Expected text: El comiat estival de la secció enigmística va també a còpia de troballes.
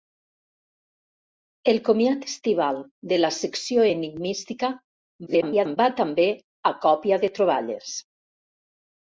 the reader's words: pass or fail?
fail